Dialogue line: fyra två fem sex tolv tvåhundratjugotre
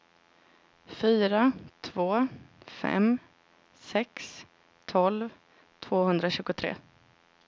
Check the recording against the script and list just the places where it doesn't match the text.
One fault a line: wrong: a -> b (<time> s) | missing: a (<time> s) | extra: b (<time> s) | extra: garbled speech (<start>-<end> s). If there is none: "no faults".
no faults